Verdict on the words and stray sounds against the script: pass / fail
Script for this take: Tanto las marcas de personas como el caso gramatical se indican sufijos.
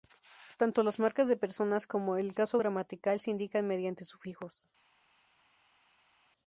fail